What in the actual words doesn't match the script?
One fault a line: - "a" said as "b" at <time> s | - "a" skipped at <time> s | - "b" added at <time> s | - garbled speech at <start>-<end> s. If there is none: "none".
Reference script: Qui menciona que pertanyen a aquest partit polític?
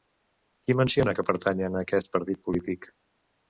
none